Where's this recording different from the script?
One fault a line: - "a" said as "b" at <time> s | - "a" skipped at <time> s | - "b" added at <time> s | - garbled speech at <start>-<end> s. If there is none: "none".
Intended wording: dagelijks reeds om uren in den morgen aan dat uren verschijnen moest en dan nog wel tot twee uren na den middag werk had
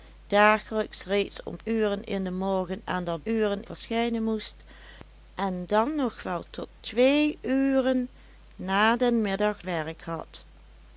none